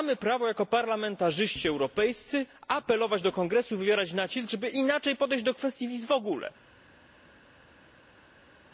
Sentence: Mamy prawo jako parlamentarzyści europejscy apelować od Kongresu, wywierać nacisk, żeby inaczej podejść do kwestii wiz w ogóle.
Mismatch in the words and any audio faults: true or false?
true